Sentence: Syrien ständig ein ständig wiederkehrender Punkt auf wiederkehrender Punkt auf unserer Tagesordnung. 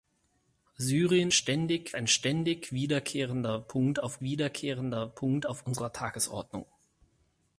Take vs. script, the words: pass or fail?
pass